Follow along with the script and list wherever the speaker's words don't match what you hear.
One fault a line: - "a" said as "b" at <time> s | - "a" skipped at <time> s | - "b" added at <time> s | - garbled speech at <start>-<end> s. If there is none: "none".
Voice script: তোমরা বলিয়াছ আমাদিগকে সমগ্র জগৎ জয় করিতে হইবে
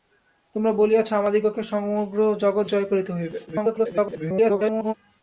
- garbled speech at 3.5-4.9 s